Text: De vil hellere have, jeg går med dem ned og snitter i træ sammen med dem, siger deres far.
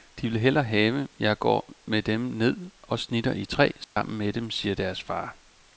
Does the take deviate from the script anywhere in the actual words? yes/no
no